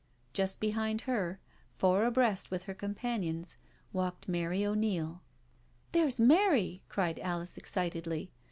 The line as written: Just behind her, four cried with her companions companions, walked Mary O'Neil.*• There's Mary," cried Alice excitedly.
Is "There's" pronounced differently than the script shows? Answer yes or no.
no